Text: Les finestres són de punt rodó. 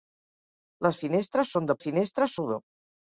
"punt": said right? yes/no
no